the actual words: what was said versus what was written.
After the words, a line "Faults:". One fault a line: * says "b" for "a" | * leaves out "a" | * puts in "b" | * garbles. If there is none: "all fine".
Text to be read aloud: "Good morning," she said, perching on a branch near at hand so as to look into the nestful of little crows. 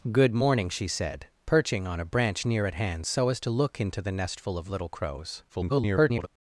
"Good morning," she said, perching on a branch near at hand so as to look into the nestful of little crows. [garbled]
Faults:
* garbles